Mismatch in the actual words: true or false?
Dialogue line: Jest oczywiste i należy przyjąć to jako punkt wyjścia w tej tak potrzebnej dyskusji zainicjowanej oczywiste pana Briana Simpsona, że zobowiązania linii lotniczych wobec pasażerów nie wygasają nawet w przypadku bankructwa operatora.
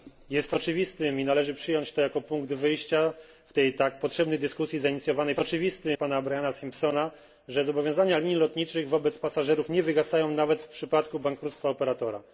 false